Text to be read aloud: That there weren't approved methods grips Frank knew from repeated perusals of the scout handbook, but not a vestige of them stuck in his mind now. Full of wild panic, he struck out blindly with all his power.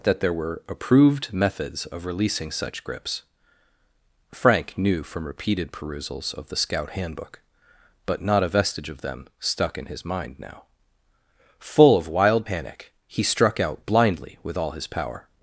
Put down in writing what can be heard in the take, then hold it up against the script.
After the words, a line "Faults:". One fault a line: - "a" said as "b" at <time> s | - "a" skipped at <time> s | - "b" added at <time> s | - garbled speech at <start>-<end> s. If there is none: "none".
That there were approved methods of releasing such grips Frank knew from repeated perusals of the scout handbook, but not a vestige of them stuck in his mind now. Full of wild panic, he struck out blindly with all his power.
Faults:
- "weren't" said as "were" at 0.3 s
- "of releasing such" added at 1.9 s